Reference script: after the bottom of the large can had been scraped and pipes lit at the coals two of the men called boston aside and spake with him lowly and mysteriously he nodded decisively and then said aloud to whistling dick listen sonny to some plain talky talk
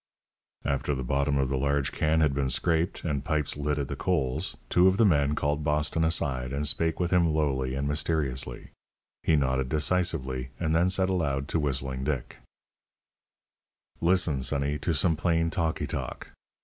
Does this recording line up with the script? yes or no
yes